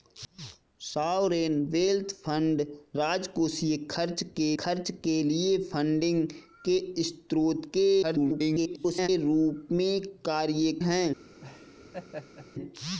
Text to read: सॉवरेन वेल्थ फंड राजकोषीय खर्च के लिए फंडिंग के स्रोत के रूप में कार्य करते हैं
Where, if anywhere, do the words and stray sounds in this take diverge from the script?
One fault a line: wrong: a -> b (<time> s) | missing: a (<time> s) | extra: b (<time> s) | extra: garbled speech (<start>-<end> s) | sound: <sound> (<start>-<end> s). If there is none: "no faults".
extra: खर्च के (4.6 s)
extra: garbled speech (8.0-9.1 s)
missing: करते (10.7 s)
sound: laugh (11.4-12.5 s)